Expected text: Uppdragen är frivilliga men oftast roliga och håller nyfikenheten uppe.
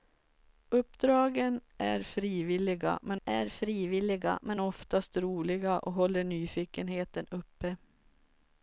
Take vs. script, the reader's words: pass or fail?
fail